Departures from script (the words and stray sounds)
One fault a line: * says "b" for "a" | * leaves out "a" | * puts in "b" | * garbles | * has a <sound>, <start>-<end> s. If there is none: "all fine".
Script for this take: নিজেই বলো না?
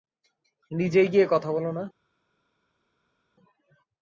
* puts in "গিয়ে কথা"